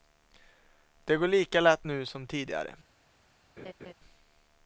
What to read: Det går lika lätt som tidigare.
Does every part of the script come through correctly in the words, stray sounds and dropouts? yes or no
no